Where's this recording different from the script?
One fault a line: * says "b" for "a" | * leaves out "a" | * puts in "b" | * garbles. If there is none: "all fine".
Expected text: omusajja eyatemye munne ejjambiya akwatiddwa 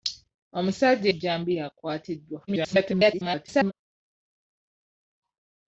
* leaves out "eyatemye munne"
* garbles